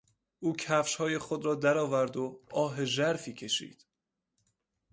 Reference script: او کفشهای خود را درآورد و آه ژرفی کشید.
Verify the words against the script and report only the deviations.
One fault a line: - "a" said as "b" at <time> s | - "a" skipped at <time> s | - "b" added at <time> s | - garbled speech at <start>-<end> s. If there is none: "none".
none